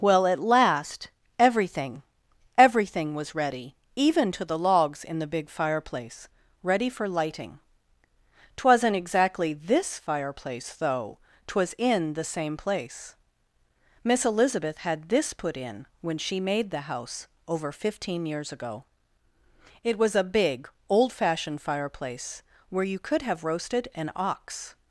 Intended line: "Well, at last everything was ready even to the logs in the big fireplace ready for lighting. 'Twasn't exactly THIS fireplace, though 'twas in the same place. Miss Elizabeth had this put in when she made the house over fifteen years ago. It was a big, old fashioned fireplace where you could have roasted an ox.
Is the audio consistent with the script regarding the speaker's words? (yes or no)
no